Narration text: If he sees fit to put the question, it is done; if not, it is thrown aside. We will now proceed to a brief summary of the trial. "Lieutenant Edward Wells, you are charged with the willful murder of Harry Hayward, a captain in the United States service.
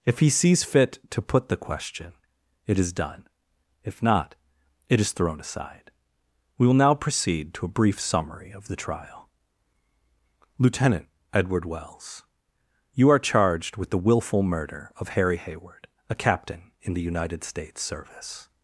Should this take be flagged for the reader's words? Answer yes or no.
no